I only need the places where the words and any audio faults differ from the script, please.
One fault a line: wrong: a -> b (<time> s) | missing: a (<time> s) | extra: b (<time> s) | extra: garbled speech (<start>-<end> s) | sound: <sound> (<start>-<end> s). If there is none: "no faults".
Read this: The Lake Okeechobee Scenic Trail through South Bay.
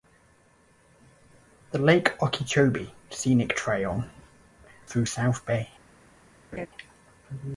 sound: laugh (6.5-6.7 s)